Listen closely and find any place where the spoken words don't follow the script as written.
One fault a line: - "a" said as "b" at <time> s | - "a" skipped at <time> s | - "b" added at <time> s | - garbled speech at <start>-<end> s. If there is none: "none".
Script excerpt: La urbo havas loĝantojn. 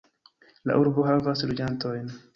none